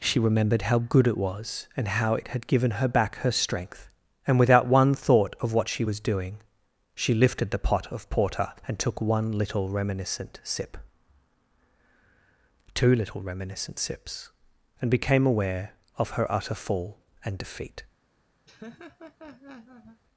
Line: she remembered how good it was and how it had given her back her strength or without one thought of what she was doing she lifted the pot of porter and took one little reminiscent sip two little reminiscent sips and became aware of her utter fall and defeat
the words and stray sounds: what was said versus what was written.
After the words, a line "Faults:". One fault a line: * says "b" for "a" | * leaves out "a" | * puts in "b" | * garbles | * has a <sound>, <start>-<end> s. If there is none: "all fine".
she remembered how good it was and how it had given her back her strength and without one thought of what she was doing she lifted the pot of porter and took one little reminiscent sip two little reminiscent sips and became aware of her utter fall and defeat
Faults:
* says "and" for "or"
* has a laugh, 18.5-20.0 s